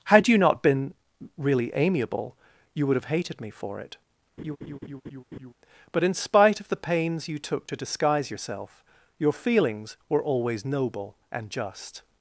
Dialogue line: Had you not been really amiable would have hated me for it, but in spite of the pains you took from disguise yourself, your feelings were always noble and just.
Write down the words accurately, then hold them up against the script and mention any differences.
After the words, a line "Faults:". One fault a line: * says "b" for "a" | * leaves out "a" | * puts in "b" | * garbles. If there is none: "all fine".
Had you not been really amiable you would have hated me for it, but in spite of the pains you took to disguise yourself, your feelings were always noble and just.
Faults:
* puts in "you"
* says "to" for "from"